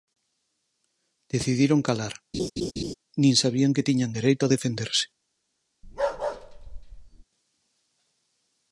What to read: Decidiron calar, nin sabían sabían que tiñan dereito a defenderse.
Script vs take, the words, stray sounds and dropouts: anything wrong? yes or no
yes